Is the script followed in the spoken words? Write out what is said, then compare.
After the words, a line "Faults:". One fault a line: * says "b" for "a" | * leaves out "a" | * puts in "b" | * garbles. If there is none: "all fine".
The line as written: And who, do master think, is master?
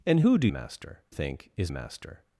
And who, do master think, is master?
Faults:
all fine